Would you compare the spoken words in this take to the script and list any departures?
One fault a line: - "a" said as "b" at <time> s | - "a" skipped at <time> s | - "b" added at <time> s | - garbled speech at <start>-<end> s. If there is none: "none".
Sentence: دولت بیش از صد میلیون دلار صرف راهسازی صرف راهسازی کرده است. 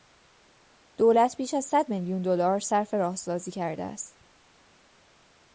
- "صرف راهسازی" skipped at 3.5 s